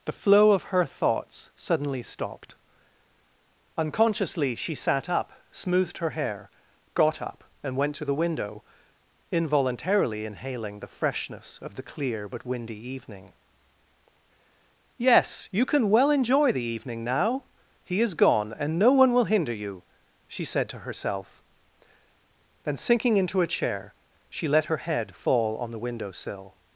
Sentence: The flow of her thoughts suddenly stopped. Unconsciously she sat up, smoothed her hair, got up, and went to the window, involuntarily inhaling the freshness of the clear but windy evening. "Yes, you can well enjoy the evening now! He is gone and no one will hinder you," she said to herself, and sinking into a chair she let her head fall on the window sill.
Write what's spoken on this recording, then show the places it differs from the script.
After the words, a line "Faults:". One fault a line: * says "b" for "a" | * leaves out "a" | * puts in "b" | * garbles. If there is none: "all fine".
The flow of her thoughts suddenly stopped. Unconsciously she sat up, smoothed her hair, got up, and went to the window, involuntarily inhaling the freshness of the clear but windy evening. "Yes, you can well enjoy the evening now! He is gone and no one will hinder you," she said to herself, then sinking into a chair she let her head fall on the window sill.
Faults:
* says "then" for "and"